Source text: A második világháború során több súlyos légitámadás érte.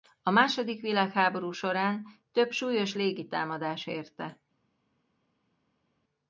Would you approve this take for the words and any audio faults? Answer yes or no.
yes